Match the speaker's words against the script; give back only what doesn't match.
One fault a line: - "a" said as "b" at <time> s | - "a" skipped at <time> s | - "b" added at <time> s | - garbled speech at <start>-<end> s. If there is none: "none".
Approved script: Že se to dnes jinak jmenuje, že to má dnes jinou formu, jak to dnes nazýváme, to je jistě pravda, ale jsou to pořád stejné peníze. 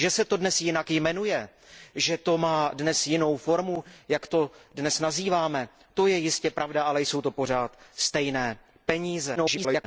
- garbled speech at 9.4-9.8 s